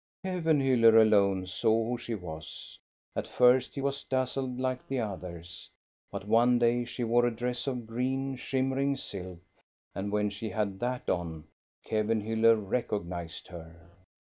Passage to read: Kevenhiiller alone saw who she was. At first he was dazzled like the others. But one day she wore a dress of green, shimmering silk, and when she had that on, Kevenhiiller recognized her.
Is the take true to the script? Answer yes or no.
yes